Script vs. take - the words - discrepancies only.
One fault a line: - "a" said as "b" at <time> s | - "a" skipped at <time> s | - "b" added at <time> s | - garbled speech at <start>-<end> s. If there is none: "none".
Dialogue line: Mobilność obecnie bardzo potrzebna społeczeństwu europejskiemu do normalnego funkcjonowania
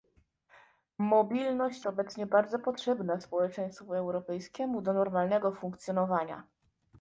none